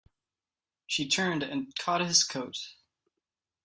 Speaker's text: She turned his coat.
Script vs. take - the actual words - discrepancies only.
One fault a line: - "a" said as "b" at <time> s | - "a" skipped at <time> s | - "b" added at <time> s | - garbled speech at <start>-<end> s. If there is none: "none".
- "and caught" added at 1.4 s